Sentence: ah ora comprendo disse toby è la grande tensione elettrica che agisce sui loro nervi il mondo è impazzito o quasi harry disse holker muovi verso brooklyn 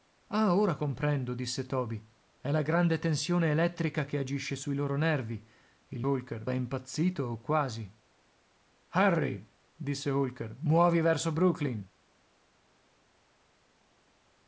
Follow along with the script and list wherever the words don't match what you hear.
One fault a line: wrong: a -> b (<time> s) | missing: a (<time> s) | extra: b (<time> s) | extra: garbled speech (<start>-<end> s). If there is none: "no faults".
wrong: mondo -> holker (6.0 s)